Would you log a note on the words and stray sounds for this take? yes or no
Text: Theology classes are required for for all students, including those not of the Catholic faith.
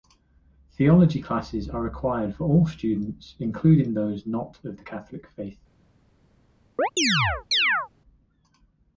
yes